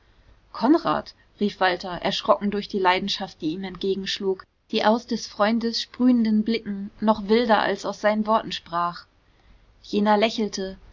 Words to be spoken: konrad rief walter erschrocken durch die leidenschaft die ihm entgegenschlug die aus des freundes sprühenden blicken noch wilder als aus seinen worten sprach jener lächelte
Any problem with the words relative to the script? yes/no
no